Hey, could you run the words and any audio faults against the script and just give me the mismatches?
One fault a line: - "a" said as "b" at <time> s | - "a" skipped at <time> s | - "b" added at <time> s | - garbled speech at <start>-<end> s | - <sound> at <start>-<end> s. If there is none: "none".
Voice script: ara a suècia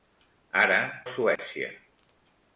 - dropout at 1.4-1.4 s